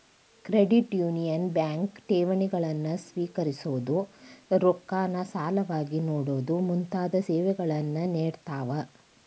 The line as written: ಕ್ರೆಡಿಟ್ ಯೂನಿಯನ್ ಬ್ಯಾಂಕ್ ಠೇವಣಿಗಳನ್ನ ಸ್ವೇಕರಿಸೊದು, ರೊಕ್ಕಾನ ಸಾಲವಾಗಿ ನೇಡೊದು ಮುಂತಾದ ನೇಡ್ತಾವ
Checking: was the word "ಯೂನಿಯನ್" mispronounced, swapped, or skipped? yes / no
no